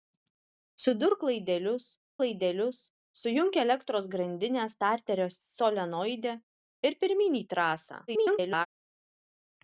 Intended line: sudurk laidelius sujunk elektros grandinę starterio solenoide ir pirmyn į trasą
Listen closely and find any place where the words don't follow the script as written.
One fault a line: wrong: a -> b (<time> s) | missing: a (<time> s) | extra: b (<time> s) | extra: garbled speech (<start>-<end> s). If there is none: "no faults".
extra: laidelius (2.2 s)
extra: garbled speech (8.1-8.7 s)